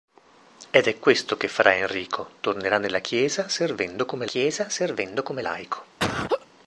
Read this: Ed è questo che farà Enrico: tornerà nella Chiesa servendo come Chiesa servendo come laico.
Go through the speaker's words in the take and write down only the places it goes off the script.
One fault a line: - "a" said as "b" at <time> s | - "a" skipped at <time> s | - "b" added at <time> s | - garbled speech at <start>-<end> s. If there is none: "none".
none